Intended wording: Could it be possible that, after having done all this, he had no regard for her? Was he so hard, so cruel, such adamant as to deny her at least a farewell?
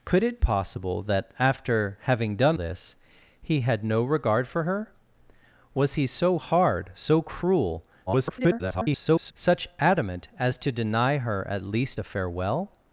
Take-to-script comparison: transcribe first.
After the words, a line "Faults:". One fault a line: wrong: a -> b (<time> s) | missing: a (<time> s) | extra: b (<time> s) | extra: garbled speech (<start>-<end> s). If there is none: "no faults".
Could it possible that, after having done this, he had no regard for her? Was he so hard, so cruel, [garbled] such adamant as to deny her at least a farewell?
Faults:
missing: be (0.4 s)
missing: all (2.6 s)
extra: garbled speech (8.1-9.3 s)